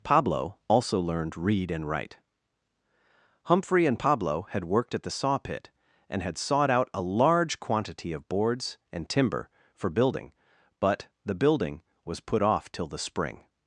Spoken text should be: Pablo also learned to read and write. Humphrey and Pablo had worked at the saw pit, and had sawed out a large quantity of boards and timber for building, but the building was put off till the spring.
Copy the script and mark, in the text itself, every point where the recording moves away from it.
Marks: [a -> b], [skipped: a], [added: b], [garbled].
Pablo also learned [skipped: to] read and write. Humphrey and Pablo had worked at the saw pit, and had sawed out a large quantity of boards and timber for building, but the building was put off till the spring.